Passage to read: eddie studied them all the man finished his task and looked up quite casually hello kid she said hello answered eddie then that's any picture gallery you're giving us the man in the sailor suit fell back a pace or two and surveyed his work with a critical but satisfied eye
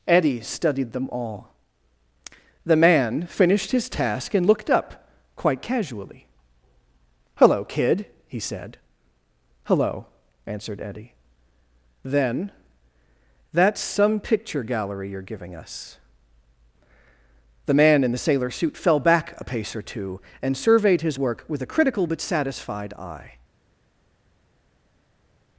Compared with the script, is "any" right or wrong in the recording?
wrong